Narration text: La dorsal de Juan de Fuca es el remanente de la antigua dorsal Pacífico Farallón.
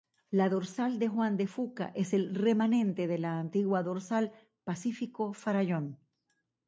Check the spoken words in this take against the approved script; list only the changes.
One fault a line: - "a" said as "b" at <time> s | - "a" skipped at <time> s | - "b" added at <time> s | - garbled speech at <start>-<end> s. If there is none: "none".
none